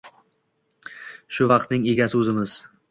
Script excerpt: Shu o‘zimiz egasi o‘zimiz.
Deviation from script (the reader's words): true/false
true